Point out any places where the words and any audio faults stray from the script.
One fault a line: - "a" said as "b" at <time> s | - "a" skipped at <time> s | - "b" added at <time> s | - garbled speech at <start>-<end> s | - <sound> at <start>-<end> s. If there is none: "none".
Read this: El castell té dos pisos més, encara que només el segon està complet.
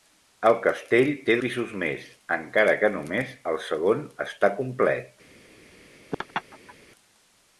- "dos" skipped at 1.4 s
- laugh at 6.1-6.7 s